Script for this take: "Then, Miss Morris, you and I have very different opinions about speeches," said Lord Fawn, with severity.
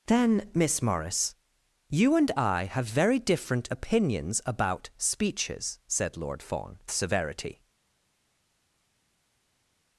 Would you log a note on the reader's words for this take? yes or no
yes